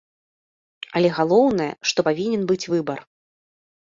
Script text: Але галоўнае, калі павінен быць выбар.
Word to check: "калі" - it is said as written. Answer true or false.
false